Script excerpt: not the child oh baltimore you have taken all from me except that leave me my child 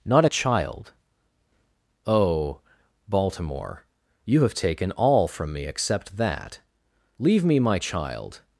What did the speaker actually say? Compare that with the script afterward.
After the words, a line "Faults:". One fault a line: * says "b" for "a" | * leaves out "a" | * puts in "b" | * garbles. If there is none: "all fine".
not a child oh baltimore you have taken all from me except that leave me my child
Faults:
* says "a" for "the"